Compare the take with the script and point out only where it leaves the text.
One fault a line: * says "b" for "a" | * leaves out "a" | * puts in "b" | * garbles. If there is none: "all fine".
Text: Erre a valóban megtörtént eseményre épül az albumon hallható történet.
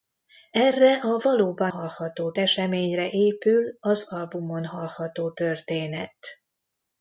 * says "hallható" for "megtörtént"